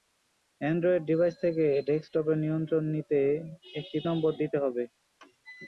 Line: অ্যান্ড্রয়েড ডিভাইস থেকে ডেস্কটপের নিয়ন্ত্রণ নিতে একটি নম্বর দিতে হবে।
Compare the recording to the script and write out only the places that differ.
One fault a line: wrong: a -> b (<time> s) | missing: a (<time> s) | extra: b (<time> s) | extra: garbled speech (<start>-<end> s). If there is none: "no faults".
no faults